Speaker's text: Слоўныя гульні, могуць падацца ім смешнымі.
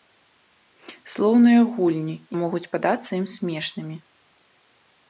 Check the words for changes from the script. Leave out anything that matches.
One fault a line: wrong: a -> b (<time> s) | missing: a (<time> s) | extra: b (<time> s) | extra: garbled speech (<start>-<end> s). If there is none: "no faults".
no faults